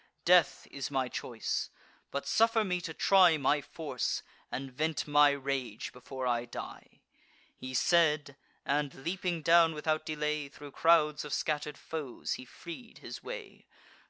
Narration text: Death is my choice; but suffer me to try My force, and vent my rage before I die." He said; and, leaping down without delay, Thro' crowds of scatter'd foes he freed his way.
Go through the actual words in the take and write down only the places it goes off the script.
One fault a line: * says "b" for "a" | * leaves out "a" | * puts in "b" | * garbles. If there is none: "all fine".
all fine